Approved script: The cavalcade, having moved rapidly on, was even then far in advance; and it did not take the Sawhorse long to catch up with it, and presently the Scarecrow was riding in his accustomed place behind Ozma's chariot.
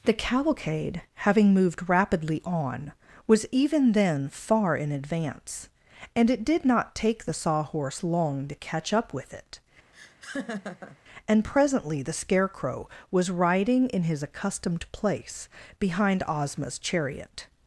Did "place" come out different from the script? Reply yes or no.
no